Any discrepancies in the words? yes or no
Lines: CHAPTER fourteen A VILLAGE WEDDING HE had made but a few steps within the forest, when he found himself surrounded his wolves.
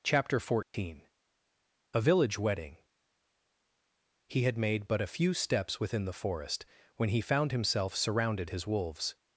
no